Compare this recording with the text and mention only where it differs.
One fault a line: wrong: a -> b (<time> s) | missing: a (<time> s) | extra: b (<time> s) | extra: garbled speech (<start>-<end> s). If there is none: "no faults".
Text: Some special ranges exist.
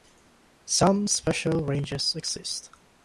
no faults